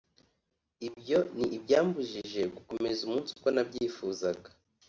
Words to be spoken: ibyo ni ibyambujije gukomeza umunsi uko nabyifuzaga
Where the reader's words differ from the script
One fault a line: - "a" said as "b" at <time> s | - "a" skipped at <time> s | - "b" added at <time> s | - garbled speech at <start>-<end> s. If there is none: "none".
none